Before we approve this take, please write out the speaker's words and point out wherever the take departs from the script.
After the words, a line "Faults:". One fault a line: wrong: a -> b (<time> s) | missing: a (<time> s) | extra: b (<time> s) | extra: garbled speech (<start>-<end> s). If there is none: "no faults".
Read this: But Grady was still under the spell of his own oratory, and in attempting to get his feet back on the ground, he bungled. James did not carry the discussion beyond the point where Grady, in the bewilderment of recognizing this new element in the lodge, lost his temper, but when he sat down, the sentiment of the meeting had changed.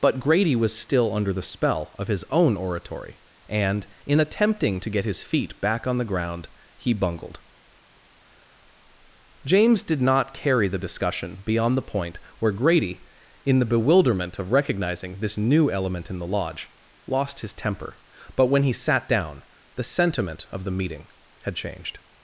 But Grady was still under the spell of his own oratory, and in attempting to get his feet back on the ground, he bungled. James did not carry the discussion beyond the point where Grady, in the bewilderment of recognizing this new element in the lodge, lost his temper, but when he sat down, the sentiment of the meeting had changed.
Faults:
no faults